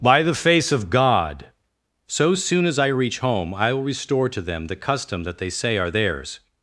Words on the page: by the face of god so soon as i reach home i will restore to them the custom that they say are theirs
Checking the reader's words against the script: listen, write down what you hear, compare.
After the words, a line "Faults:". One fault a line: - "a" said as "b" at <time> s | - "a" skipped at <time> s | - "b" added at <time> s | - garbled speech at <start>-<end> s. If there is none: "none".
by the face of god so soon as i reach home i will restore to them the custom that they say are theirs
Faults:
none